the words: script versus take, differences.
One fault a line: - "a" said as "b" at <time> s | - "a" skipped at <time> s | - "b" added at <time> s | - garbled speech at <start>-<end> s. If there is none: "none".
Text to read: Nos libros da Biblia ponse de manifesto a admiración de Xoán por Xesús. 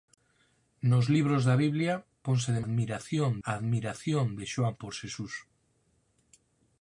- "manifesto" said as "admiración" at 2.6 s